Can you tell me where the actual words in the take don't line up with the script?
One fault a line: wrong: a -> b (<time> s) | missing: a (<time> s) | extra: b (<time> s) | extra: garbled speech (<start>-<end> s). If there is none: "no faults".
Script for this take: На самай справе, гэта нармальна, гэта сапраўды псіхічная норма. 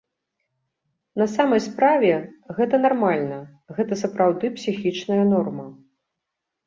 no faults